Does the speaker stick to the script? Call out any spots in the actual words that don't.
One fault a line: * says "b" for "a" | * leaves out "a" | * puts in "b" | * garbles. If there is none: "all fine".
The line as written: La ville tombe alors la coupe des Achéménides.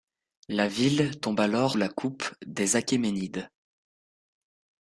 all fine